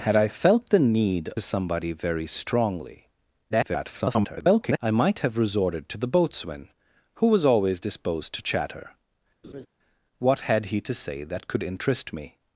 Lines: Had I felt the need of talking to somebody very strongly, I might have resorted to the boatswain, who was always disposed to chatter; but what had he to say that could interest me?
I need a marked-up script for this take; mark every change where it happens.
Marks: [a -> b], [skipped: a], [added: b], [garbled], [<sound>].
Had I felt the need [skipped: of talking to] somebody very strongly, [garbled] I might have resorted to the boatswain, who was always disposed to chatter; [skipped: but] [laugh] what had he to say that could interest me?